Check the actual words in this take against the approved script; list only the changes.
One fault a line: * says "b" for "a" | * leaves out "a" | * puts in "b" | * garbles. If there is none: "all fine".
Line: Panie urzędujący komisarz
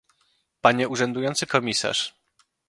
all fine